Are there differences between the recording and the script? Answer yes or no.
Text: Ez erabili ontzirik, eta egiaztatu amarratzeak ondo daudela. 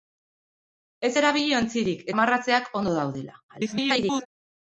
yes